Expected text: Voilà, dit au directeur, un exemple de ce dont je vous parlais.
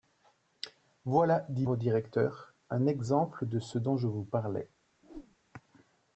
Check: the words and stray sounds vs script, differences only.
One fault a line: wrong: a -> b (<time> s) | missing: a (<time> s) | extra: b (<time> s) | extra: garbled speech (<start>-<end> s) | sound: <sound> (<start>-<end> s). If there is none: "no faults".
sound: whoosh (5.0-5.4 s)